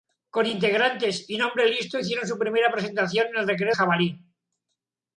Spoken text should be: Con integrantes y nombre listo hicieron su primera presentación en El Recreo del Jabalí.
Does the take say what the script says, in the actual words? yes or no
no